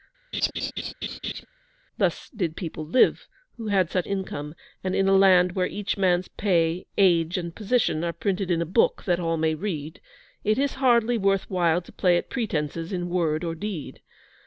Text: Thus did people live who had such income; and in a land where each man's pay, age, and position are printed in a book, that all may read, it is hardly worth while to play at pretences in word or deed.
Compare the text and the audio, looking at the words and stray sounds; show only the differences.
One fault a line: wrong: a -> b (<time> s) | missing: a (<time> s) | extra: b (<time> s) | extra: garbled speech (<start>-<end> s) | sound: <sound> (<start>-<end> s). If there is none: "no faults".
sound: laugh (0.3-1.5 s)